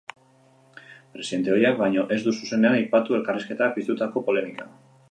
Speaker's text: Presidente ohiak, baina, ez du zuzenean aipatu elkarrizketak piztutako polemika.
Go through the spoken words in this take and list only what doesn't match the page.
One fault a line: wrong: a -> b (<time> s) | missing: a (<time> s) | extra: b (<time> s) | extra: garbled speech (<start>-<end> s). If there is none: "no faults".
no faults